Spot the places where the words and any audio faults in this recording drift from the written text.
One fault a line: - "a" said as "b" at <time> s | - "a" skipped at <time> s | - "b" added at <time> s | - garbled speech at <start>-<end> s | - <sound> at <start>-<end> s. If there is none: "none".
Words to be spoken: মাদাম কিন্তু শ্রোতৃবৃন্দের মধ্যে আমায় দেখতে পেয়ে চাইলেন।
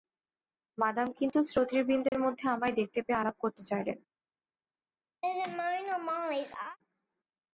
- dropout at 2.1-2.1 s
- "আলাপ করতে" added at 3.2 s
- laugh at 5.2-6.8 s